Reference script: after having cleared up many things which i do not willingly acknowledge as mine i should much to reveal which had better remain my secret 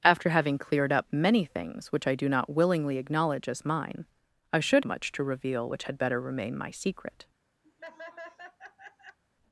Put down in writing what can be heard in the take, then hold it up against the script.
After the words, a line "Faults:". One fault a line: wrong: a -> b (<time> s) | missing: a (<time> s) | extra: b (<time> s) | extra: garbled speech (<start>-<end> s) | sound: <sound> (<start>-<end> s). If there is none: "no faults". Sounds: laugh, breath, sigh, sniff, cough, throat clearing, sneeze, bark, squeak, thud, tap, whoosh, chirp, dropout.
after having cleared up many things which i do not willingly acknowledge as mine i should much to reveal which had better remain my secret
Faults:
sound: laugh (7.6-9.2 s)